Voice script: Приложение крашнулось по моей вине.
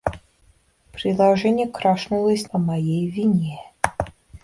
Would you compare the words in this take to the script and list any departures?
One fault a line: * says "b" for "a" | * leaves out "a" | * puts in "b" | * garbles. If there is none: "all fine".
all fine